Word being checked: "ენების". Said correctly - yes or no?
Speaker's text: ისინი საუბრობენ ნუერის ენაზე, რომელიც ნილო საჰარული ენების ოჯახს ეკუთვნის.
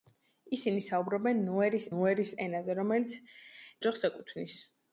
no